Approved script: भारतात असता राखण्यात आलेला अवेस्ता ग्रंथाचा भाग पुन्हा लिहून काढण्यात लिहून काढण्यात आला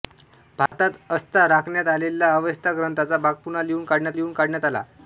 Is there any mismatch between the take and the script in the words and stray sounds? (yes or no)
yes